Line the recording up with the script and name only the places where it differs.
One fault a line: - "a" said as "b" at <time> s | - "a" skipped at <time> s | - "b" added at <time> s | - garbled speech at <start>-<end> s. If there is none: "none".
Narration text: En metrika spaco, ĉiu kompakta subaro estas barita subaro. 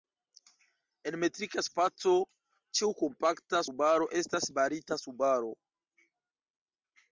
none